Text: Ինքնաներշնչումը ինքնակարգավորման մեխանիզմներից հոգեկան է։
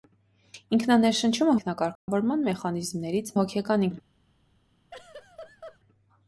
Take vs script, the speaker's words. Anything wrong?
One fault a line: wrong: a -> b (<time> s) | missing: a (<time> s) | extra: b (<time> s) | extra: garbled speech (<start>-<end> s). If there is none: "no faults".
no faults